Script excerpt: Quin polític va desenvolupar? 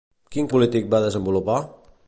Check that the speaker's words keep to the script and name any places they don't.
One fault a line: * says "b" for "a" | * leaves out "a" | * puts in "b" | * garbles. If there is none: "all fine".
all fine